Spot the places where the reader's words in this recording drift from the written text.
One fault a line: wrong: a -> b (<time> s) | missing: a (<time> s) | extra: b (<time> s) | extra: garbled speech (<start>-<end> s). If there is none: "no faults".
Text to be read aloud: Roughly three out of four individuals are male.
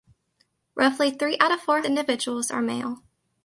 no faults